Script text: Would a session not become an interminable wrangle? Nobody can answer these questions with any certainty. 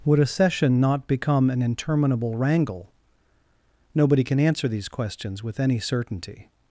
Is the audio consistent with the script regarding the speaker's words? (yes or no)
yes